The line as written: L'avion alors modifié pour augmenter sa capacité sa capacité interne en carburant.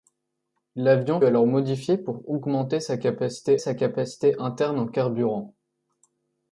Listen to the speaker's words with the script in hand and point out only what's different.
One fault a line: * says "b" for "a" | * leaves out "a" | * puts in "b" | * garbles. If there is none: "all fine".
all fine